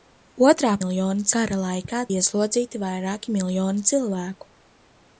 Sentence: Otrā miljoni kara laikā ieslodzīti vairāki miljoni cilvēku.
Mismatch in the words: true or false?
false